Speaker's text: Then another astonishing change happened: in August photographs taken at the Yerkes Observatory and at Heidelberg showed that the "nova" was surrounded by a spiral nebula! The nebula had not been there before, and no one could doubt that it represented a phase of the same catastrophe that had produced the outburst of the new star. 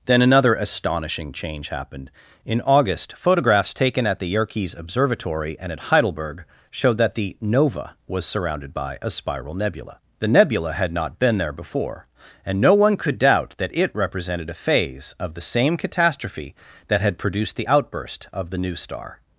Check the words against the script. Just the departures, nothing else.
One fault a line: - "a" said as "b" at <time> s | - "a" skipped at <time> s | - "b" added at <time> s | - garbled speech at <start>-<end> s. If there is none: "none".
none